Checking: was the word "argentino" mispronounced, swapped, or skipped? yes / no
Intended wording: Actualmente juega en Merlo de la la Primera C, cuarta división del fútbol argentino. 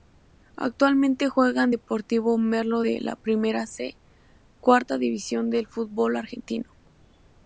no